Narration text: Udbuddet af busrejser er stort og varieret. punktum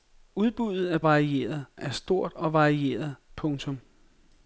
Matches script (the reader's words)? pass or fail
fail